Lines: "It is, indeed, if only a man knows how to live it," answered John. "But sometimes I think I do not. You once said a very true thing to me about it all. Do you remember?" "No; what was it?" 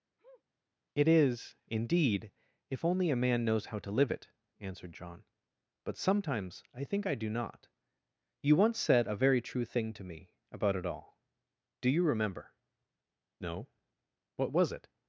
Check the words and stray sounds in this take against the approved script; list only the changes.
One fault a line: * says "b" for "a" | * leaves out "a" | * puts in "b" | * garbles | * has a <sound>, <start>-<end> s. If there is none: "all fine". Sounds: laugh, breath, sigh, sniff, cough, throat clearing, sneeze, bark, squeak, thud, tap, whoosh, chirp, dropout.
* has a sniff, 0.2-0.4 s